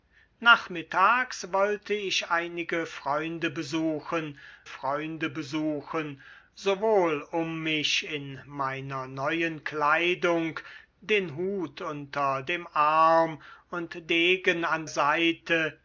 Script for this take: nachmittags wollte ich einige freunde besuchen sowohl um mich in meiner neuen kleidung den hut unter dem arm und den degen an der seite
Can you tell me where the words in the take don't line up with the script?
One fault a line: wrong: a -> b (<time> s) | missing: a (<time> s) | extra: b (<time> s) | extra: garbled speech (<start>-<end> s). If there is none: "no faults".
extra: freunde besuchen (4.6 s)
missing: den (14.1 s)
missing: der (14.9 s)